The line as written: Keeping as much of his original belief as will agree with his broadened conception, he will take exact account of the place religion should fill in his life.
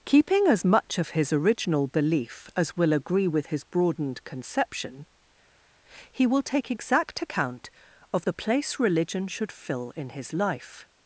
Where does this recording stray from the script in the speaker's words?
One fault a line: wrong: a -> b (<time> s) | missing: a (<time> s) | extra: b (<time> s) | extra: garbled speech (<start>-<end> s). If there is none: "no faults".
no faults